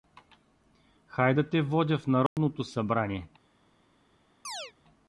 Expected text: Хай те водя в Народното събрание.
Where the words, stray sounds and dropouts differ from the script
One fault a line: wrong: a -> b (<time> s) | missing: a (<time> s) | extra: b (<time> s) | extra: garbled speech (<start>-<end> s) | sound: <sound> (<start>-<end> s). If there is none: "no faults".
extra: да (1.3 s)
sound: dropout (2.3-2.4 s)
sound: chirp (4.4-4.7 s)